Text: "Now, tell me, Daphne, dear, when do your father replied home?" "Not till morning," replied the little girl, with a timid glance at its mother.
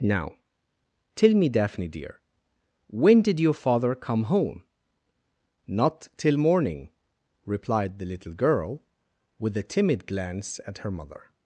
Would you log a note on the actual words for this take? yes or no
yes